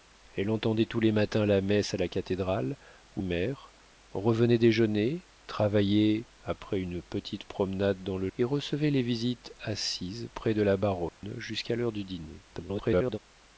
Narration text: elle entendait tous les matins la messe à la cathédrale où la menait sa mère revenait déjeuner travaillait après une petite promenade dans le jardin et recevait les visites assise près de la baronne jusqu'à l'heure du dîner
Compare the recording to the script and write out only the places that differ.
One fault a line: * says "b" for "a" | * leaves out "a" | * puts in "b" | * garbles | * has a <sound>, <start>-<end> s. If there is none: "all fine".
* leaves out "la menait sa"
* leaves out "jardin"
* has a dropout, 11.1-11.2 s
* garbles